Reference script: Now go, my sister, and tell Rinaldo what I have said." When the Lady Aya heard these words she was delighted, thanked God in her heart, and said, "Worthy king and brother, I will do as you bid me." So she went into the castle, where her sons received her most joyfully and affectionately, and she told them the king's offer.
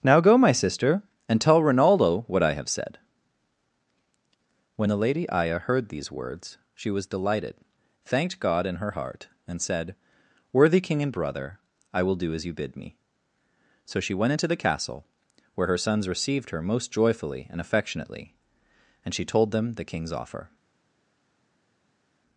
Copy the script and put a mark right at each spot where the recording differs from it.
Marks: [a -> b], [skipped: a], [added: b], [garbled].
Now go, my sister, and tell Rinaldo what I have said." When the Lady Aya heard these words she was delighted, thanked God in her heart, and said, "Worthy king and brother, I will do as you bid me." So she went into the castle, where her sons received her most joyfully and affectionately, and she told them the king's offer.